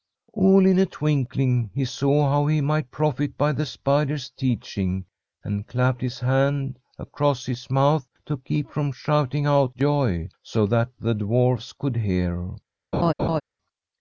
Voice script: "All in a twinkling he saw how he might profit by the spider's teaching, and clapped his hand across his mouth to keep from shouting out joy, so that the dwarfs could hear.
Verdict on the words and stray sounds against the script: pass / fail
fail